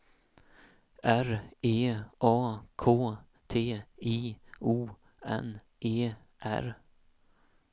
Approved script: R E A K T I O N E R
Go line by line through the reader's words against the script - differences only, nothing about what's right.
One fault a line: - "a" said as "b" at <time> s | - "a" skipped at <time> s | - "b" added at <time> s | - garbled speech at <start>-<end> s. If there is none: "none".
none